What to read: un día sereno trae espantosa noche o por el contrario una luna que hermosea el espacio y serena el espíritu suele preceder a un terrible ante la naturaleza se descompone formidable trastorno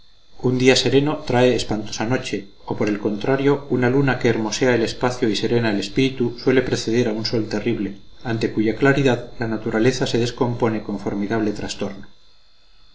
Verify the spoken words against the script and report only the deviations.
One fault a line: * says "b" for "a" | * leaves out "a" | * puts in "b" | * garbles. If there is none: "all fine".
* puts in "sol"
* puts in "cuya claridad"
* puts in "con"